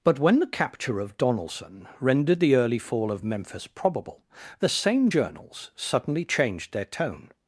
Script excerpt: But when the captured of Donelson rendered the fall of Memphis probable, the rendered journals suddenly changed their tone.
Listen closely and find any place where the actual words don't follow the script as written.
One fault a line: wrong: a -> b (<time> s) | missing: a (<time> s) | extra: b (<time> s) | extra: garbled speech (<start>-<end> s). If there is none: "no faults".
wrong: captured -> capture (0.5 s)
extra: early (2.5 s)
wrong: rendered -> same (4.7 s)